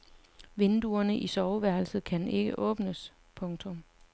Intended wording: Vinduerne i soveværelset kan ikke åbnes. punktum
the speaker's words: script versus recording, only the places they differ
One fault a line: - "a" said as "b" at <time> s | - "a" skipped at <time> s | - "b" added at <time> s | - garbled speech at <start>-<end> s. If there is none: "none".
none